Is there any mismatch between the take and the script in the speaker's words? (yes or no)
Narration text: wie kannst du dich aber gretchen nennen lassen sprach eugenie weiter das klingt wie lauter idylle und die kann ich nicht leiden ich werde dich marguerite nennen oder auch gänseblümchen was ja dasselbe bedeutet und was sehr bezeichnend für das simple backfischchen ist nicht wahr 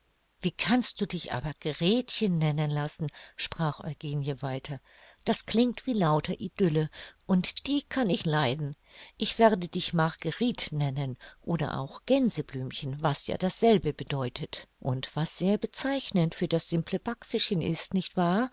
yes